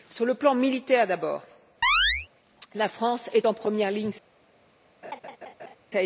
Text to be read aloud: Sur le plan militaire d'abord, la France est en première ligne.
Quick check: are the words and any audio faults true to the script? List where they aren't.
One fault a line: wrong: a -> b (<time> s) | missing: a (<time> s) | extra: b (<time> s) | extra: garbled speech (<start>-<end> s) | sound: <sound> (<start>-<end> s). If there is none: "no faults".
sound: chirp (1.8-2.3 s)
sound: laugh (5.0-5.8 s)